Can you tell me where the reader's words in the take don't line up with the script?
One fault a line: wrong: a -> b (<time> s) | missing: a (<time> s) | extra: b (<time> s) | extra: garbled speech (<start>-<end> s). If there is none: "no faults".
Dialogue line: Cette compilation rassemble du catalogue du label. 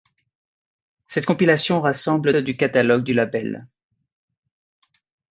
no faults